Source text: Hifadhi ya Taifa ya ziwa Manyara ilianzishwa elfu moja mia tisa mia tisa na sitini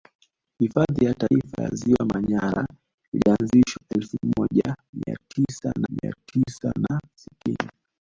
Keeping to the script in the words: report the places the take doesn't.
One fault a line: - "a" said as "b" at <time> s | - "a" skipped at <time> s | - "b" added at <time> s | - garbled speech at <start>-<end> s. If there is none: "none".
none